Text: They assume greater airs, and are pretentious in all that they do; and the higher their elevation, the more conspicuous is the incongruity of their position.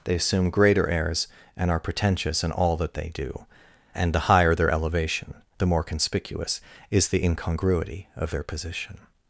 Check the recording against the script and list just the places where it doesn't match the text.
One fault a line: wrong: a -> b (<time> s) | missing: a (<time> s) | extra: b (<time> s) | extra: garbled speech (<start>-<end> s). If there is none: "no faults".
no faults